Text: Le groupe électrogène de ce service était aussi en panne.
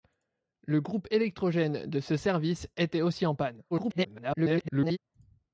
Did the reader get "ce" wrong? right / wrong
right